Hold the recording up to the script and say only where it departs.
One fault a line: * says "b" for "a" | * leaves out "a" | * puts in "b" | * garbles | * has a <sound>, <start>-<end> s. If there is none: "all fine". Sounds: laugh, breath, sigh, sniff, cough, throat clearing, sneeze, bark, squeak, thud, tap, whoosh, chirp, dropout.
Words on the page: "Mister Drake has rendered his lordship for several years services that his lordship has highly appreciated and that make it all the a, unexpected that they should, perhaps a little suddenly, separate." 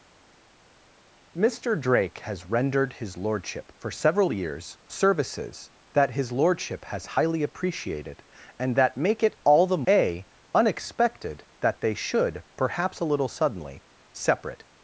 all fine